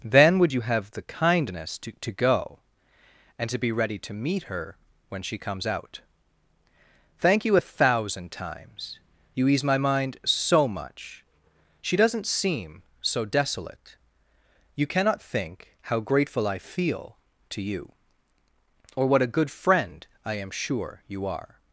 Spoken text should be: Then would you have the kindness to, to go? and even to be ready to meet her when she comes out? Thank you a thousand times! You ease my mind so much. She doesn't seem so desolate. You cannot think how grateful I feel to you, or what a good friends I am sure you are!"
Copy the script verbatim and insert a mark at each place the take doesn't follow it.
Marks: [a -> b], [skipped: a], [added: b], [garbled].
Then would you have the kindness to, to go? and [skipped: even] to be ready to meet her when she comes out? Thank you a thousand times! You ease my mind so much. She doesn't seem so desolate. You cannot think how grateful I feel to you, or what a good [friends -> friend] I am sure you are!"